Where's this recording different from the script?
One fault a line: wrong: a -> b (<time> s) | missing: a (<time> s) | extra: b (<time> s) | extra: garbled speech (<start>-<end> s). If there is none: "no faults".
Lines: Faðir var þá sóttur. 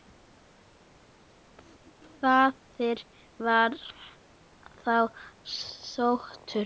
no faults